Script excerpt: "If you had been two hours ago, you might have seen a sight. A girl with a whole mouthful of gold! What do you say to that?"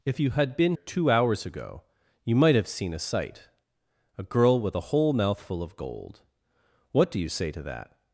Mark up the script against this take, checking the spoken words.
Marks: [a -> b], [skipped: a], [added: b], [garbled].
"If you had been two hours ago, you might have seen a sight. A girl with a whole mouthful of gold! What do you say to that?"